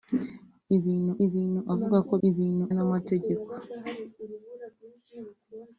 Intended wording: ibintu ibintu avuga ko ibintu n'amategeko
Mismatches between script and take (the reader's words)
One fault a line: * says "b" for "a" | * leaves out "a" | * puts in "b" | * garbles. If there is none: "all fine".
all fine